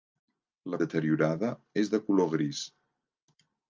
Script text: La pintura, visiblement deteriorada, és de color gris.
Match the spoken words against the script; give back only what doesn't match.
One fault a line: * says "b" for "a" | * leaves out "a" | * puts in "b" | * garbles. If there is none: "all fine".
* leaves out "pintura visiblement"